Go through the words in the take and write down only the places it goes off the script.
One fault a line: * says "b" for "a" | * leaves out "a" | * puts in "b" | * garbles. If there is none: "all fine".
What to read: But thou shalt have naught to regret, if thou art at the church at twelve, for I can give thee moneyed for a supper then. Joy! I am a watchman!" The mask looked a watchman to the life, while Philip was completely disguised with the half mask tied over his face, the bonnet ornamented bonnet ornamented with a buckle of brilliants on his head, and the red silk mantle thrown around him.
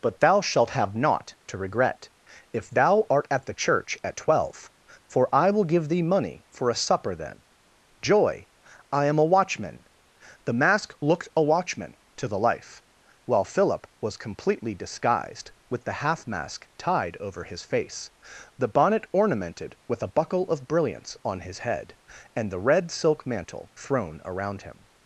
* says "will" for "can"
* says "money" for "moneyed"
* leaves out "bonnet ornamented"